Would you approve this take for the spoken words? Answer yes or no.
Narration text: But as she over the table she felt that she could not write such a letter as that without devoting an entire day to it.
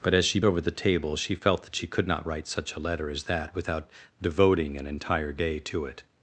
yes